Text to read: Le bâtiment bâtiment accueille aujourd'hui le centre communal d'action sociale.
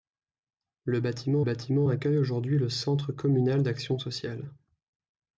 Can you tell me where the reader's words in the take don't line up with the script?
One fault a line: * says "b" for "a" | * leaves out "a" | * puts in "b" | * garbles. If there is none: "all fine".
all fine